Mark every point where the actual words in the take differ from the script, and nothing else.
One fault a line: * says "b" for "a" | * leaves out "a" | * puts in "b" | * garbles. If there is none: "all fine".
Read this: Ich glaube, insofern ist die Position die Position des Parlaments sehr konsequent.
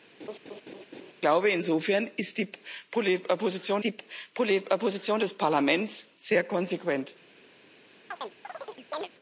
all fine